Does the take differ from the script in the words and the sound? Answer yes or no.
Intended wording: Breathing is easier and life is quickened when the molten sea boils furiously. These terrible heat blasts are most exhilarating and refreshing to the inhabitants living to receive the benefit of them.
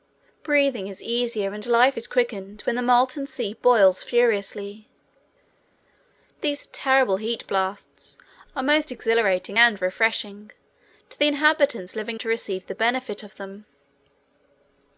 no